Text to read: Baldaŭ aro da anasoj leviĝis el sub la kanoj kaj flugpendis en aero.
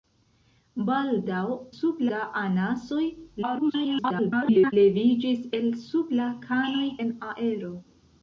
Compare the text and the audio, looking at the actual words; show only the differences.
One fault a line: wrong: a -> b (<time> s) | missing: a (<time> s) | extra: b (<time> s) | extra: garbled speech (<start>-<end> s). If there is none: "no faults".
wrong: aro -> sub (1.8 s)
extra: garbled speech (3.4-4.7 s)
missing: kaj flugpendis (6.9 s)